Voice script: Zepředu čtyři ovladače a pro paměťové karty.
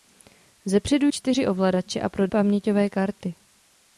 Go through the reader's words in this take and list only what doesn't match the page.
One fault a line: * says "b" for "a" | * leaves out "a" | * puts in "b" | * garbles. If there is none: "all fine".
all fine